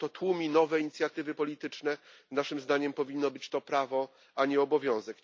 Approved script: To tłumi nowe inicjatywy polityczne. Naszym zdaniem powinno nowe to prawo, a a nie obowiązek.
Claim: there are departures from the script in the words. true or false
true